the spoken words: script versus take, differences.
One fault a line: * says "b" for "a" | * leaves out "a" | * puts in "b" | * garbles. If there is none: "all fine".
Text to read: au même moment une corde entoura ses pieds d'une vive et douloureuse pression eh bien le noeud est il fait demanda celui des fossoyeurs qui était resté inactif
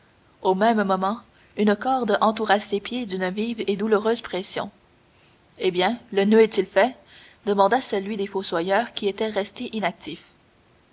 all fine